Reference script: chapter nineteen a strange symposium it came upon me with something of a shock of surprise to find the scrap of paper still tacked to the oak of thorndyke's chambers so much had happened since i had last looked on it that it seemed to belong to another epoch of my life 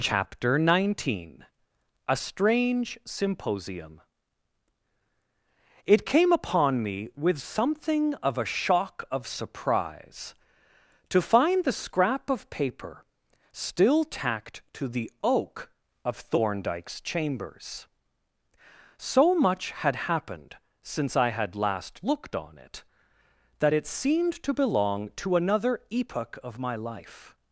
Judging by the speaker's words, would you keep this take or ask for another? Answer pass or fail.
pass